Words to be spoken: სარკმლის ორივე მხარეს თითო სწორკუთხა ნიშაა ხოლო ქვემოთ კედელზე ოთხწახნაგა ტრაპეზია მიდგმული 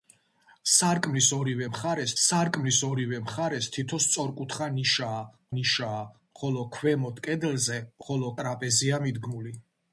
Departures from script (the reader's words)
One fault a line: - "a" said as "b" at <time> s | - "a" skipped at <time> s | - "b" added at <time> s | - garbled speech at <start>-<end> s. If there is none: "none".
- "სარკმლის ორივე მხარეს" added at 2.2 s
- "ნიშაა" added at 5.6 s
- "ოთხწახნაგა" said as "ხოლო" at 8.1 s